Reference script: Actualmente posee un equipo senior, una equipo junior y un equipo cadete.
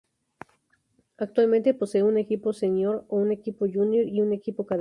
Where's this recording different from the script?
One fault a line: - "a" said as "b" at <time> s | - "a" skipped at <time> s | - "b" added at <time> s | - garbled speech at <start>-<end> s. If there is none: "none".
- "una" said as "un" at 3.1 s